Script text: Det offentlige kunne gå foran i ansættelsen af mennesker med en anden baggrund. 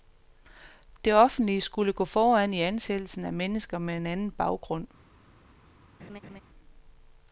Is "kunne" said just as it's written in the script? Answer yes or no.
no